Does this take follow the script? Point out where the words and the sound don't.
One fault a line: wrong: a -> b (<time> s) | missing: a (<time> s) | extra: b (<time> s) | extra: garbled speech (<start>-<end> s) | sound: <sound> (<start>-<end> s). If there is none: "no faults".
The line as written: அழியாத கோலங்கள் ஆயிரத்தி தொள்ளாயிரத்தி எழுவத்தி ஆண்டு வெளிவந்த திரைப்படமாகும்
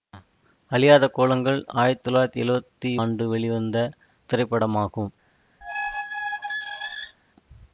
sound: squeak (5.6-7.2 s)